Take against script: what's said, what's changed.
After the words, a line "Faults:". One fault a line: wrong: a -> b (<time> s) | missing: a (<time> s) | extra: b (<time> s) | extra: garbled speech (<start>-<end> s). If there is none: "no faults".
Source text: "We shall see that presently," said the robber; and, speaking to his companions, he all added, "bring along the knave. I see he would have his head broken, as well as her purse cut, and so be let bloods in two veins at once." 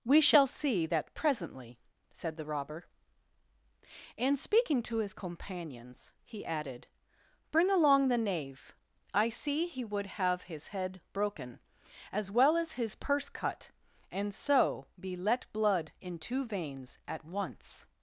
"We shall see that presently," said the robber; and, speaking to his companions, he added, "bring along the knave. I see he would have his head broken, as well as his purse cut, and so be let blood in two veins at once."
Faults:
missing: all (6.4 s)
wrong: her -> his (12.7 s)
wrong: bloods -> blood (15.5 s)